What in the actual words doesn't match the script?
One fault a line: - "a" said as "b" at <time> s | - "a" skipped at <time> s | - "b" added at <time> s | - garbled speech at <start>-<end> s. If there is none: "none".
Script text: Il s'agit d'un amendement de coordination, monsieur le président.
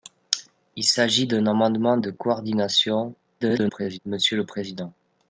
- garbled speech at 3.4-4.0 s